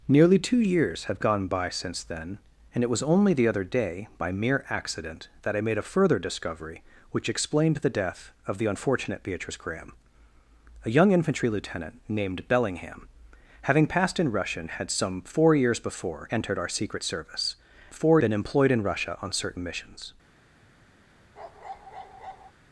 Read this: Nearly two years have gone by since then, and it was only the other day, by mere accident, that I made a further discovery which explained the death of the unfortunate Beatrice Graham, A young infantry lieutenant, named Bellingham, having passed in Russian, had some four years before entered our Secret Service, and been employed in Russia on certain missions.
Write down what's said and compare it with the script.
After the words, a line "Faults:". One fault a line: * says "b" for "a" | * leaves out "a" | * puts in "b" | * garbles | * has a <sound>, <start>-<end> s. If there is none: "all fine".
Nearly two years have gone by since then, and it was only the other day, by mere accident, that I made a further discovery which explained the death of the unfortunate Beatrice Graham, A young infantry lieutenant, named Bellingham, having passed in Russian, had some four years before entered our Secret Service, four been employed in Russia on certain missions.
Faults:
* says "four" for "and"
* has a bark, 21.4-22.5 s